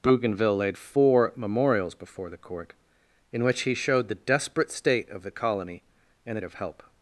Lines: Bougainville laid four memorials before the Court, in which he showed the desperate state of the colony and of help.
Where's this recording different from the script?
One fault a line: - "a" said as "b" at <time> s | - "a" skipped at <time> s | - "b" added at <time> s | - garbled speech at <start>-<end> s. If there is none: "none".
none